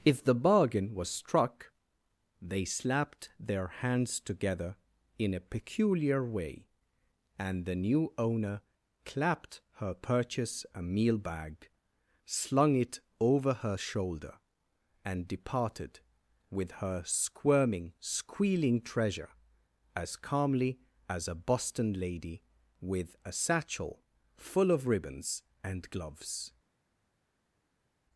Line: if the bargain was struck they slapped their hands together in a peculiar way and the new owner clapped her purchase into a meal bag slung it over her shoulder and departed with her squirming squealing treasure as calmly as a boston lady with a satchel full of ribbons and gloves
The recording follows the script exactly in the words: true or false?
false